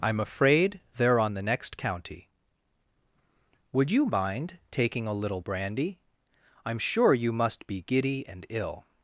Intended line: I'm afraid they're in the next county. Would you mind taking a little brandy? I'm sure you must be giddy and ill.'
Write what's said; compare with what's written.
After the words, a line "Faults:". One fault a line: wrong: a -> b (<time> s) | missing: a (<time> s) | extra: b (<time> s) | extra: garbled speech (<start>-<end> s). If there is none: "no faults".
I'm afraid they're on the next county. Would you mind taking a little brandy? I'm sure you must be giddy and ill.'
Faults:
wrong: in -> on (1.2 s)